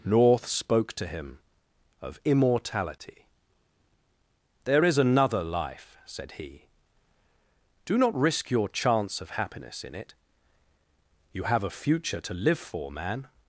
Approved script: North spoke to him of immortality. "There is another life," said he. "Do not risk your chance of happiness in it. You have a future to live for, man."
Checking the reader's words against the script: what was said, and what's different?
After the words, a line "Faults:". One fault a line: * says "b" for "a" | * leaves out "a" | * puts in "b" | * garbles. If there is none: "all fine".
North spoke to him of immortality. "There is another life," said he. "Do not risk your chance of happiness in it. You have a future to live for, man."
Faults:
all fine